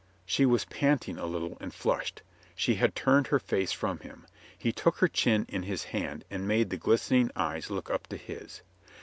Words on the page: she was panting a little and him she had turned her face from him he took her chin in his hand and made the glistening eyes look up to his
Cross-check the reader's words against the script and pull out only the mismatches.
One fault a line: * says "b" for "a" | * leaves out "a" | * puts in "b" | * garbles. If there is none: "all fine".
* says "flushed" for "him"